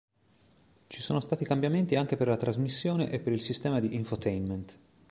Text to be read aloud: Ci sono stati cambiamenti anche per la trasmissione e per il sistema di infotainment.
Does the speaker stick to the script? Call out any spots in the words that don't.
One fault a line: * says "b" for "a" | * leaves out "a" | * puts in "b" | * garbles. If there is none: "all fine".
all fine